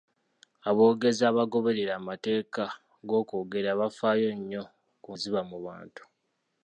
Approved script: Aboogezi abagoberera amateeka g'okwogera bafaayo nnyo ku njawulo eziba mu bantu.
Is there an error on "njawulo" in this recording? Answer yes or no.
yes